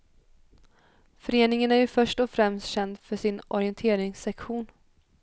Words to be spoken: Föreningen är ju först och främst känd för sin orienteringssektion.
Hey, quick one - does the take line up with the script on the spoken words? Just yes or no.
yes